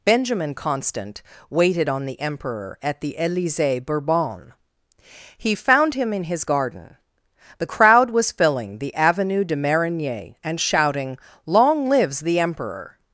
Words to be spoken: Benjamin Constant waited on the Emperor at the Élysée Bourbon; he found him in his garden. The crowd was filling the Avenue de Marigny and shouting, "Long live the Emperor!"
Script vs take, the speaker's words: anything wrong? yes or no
yes